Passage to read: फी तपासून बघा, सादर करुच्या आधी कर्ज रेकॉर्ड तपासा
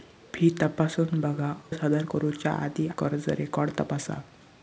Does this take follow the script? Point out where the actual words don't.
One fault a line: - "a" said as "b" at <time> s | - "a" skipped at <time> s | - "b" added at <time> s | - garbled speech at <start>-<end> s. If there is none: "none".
none